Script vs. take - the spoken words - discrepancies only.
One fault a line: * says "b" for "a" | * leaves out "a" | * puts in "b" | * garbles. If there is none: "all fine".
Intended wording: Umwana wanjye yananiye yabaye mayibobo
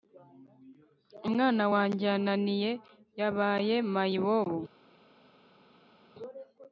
all fine